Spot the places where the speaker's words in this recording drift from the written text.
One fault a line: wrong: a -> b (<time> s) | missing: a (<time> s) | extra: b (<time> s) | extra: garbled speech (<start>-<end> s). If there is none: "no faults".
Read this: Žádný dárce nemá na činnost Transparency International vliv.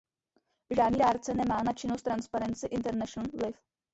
no faults